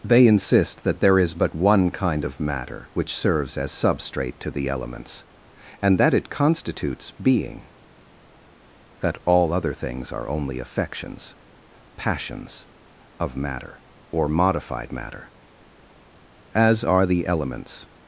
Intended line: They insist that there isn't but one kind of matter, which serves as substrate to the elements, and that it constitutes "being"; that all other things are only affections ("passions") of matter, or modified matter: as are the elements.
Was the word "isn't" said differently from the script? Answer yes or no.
yes